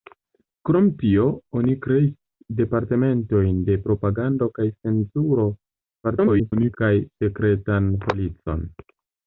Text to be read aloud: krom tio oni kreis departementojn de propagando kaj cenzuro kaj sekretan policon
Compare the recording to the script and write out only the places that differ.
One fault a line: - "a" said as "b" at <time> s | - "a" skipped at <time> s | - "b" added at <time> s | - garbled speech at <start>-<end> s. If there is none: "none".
- garbled speech at 6.0-6.8 s